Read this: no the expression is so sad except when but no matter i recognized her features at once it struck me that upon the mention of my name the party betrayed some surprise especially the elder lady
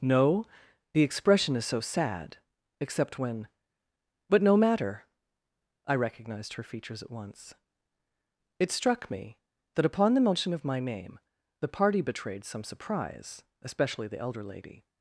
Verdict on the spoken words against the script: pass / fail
pass